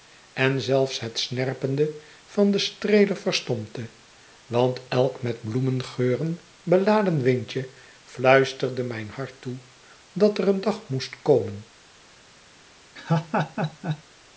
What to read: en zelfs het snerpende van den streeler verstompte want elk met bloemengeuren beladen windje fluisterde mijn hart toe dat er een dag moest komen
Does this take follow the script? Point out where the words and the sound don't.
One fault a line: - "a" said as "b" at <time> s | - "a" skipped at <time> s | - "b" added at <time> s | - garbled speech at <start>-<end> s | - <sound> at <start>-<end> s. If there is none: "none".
- laugh at 13.0-14.0 s